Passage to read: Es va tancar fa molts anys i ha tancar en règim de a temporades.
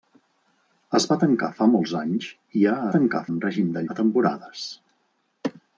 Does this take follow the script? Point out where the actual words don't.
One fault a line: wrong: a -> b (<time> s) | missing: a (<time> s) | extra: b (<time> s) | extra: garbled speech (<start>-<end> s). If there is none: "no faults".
no faults